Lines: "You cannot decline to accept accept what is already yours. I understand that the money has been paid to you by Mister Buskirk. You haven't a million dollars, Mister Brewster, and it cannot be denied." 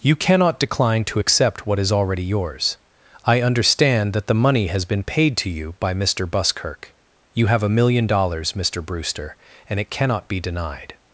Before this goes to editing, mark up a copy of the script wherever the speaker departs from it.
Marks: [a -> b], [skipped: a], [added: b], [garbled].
"You cannot decline to accept [skipped: accept] what is already yours. I understand that the money has been paid to you by Mister Buskirk. You [haven't -> have] a million dollars, Mister Brewster, and it cannot be denied."